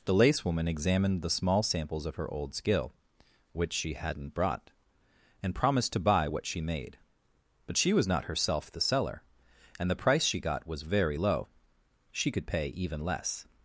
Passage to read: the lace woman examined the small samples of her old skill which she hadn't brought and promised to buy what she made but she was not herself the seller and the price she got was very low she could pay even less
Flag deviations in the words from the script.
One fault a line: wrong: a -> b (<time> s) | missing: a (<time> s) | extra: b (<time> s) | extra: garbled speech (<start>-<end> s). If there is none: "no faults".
no faults